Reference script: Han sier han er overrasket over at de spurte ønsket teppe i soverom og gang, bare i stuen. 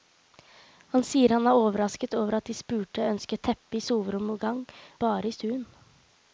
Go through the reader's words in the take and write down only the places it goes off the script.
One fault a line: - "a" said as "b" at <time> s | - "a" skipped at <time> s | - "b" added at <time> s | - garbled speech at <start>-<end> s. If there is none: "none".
none